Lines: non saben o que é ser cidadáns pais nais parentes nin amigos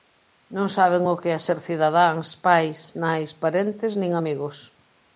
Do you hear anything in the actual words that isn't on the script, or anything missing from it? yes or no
no